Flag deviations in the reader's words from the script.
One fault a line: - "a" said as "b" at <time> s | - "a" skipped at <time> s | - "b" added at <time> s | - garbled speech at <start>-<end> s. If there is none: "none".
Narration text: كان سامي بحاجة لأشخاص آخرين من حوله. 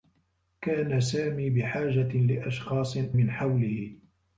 - "آخرين" skipped at 3.0 s